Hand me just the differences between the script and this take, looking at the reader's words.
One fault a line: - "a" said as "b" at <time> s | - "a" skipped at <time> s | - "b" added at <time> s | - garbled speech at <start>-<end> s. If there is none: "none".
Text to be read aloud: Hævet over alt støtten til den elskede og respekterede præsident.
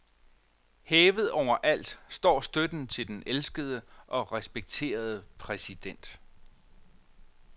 - "står" added at 2.1 s